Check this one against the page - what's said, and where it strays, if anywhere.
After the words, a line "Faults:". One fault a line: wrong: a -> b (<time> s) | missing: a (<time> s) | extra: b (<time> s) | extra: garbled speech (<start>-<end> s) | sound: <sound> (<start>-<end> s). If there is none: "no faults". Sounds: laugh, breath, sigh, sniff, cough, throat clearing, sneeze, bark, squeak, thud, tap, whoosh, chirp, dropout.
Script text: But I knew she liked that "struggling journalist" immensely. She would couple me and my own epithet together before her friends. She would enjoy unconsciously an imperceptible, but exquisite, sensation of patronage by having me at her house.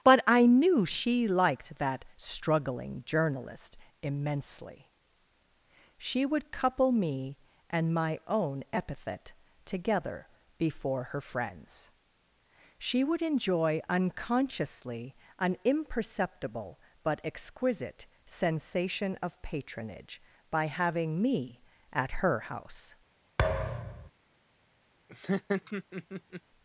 But I knew she liked that "struggling journalist" immensely. She would couple me and my own epithet together before her friends. She would enjoy unconsciously an imperceptible, but exquisite, sensation of patronage by having me at her house.
Faults:
sound: thud (23.4-24.1 s)
sound: laugh (25.1-26.4 s)